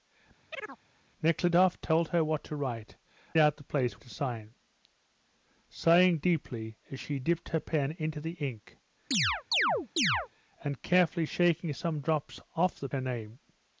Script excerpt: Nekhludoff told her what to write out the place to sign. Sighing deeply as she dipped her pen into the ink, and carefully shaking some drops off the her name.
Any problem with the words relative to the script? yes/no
no